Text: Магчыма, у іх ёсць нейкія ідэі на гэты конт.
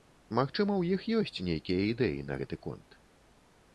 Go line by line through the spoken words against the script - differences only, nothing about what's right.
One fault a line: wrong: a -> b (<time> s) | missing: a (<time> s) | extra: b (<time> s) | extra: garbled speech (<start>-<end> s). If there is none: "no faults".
no faults